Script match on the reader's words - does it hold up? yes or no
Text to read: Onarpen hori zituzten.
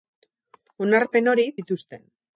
yes